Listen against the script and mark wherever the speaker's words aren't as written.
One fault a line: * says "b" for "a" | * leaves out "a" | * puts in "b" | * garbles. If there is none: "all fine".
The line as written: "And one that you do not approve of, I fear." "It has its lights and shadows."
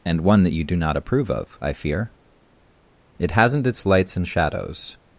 * says "hasn't" for "has"